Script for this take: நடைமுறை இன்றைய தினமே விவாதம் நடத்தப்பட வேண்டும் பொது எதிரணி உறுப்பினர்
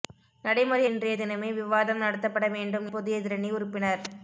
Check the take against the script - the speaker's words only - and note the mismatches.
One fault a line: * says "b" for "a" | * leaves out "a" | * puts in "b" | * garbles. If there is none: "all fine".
all fine